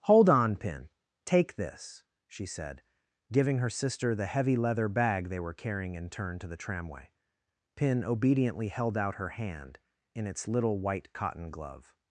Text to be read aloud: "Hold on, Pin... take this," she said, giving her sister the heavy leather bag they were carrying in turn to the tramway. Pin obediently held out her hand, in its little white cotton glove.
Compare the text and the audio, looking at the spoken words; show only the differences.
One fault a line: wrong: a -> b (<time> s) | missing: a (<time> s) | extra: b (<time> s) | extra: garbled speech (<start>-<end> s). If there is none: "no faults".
no faults